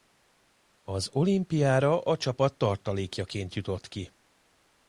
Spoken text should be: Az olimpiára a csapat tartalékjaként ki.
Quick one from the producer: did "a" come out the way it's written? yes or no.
yes